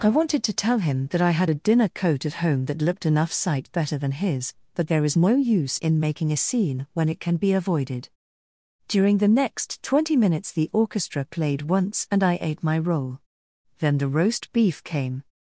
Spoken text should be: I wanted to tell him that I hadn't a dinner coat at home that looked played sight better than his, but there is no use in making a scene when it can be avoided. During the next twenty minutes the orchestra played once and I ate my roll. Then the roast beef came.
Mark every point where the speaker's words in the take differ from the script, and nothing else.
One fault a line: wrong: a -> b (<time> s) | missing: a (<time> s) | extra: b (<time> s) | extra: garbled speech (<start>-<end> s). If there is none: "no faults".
wrong: hadn't -> had (1.3 s)
wrong: played -> enough (3.0 s)